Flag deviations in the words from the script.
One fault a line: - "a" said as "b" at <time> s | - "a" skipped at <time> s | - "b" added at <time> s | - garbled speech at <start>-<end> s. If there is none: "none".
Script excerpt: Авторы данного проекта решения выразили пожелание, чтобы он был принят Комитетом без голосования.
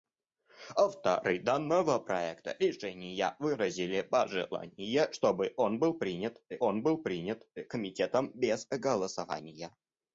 - "он был принят" added at 6.6 s